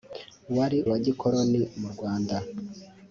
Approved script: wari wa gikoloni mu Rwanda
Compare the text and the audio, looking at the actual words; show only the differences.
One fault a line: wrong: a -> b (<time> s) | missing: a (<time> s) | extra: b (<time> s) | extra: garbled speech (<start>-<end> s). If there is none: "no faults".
no faults